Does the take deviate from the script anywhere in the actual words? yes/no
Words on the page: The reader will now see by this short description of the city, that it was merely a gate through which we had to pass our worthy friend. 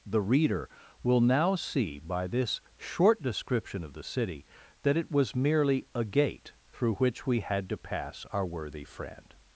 no